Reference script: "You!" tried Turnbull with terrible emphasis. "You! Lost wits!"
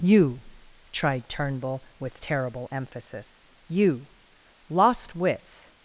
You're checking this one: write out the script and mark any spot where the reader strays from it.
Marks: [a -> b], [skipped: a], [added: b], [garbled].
"You!" tried Turnbull with terrible emphasis. "You! Lost wits!"